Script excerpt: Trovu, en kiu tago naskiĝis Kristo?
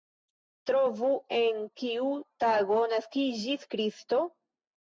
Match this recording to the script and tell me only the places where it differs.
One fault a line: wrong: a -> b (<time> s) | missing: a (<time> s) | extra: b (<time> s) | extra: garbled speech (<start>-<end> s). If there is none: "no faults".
no faults